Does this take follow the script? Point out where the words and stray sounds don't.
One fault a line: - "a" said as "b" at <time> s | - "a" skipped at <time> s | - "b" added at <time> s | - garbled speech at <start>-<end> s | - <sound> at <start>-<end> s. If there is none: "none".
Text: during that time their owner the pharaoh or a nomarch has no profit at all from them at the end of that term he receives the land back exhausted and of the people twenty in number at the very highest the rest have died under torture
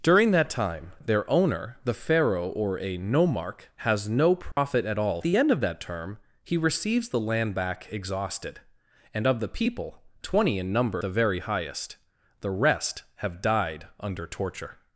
- dropout at 4.5-4.6 s
- "from them at" skipped at 5.2 s
- "at" skipped at 11.0 s